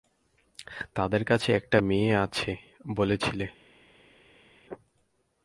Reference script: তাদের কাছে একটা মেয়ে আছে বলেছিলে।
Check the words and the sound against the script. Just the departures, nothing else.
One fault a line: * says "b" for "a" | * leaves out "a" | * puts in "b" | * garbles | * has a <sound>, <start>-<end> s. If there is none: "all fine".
all fine